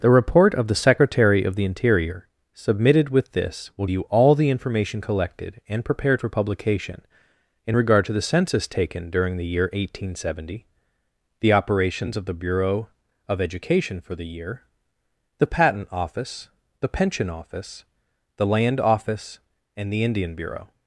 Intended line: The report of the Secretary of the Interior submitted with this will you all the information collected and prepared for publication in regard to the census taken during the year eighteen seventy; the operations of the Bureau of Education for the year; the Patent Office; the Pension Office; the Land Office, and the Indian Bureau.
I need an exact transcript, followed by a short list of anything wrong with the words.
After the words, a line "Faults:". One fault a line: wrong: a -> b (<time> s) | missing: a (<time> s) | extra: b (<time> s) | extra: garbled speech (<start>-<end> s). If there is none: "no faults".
The report of the Secretary of the Interior submitted with this will you all the information collected and prepared for publication in regard to the census taken during the year eighteen seventy; the operations of the Bureau of Education for the year; the Patent Office; the Pension Office; the Land Office, and the Indian Bureau.
Faults:
no faults